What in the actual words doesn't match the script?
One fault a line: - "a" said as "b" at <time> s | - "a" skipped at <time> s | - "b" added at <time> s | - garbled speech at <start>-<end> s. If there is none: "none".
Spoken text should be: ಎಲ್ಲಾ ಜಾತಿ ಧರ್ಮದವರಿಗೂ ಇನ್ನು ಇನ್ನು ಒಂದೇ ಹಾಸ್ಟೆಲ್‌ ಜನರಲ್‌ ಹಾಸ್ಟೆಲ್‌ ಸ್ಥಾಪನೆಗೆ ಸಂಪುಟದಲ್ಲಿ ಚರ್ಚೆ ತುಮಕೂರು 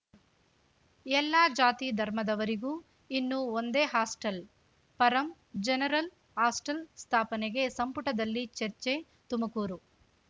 - "ಇನ್ನು" skipped at 3.4 s
- "ಪರಂ" added at 5.0 s